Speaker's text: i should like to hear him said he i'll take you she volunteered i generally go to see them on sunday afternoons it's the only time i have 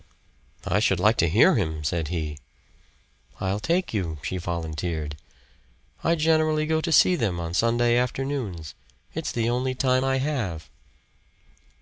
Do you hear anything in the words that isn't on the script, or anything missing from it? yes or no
no